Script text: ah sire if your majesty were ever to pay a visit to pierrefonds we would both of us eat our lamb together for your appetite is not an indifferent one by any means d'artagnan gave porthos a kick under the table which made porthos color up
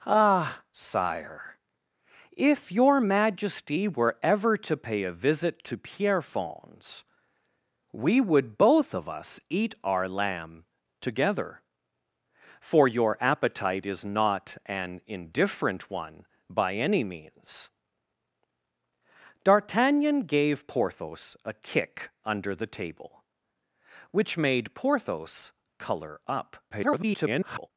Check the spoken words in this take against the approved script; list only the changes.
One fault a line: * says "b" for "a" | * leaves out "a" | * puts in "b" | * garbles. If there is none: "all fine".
* garbles